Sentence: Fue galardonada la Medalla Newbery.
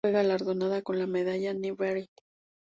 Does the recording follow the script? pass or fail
fail